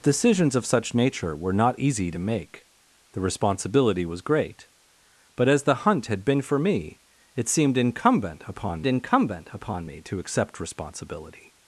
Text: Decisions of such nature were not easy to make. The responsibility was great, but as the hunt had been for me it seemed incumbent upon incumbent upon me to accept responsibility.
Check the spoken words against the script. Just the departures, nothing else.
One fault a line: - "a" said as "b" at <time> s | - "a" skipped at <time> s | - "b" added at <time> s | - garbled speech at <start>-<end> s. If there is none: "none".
none